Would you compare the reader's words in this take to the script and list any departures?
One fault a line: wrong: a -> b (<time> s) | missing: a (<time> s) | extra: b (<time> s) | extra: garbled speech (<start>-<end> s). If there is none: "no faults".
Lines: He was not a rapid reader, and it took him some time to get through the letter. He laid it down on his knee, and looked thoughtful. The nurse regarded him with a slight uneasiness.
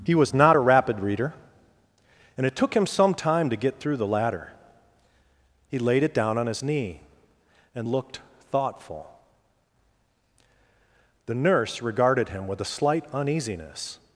wrong: letter -> ladder (4.1 s)